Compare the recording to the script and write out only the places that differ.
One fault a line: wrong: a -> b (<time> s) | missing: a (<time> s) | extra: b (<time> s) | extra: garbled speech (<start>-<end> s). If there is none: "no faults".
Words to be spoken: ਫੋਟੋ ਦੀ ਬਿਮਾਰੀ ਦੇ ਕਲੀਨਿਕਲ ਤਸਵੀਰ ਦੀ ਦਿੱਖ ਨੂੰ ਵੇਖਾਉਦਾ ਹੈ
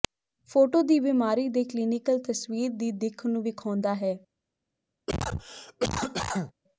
no faults